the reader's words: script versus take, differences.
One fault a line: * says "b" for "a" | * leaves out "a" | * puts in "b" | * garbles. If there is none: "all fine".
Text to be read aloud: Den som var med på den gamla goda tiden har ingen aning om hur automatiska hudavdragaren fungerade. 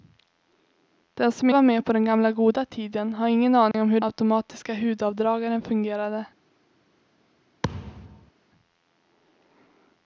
all fine